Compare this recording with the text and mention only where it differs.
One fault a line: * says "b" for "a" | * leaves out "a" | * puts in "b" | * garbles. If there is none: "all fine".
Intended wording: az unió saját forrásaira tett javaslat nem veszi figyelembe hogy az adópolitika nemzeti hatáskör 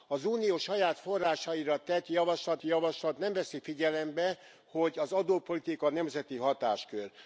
* puts in "javaslat"